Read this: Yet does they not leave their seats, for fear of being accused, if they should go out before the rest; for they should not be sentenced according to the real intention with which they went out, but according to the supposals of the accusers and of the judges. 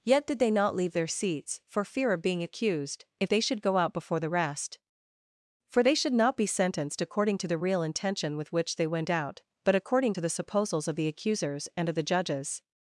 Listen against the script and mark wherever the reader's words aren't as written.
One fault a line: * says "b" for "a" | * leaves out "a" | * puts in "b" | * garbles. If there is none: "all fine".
* says "did" for "does"